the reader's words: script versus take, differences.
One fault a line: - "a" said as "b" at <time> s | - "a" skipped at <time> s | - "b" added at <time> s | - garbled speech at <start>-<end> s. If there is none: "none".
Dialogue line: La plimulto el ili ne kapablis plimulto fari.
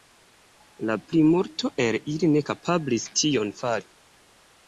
- "plimulto" said as "tion" at 3.2 s